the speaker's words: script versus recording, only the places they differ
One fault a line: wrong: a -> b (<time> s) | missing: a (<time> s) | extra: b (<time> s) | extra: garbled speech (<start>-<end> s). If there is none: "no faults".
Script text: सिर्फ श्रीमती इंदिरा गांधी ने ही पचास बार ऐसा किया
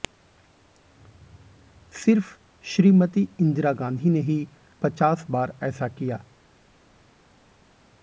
no faults